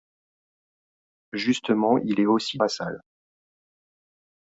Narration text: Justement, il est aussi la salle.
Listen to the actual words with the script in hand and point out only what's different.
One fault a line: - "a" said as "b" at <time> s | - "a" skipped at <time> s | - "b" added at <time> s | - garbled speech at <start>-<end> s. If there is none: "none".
none